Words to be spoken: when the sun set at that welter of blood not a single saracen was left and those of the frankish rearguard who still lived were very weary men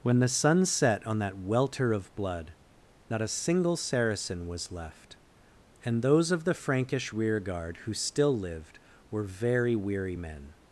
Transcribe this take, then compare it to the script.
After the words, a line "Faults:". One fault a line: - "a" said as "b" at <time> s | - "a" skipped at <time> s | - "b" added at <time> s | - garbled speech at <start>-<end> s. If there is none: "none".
when the sun set on that welter of blood not a single saracen was left and those of the frankish rearguard who still lived were very weary men
Faults:
- "at" said as "on" at 1.1 s